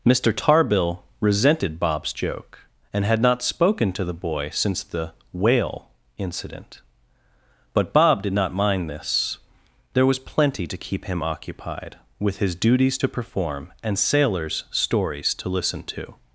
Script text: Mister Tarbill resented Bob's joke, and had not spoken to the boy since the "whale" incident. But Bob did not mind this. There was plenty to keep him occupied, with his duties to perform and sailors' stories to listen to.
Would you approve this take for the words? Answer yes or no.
yes